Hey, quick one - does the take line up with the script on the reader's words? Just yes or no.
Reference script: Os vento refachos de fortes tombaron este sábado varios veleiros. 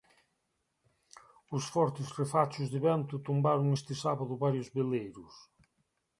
no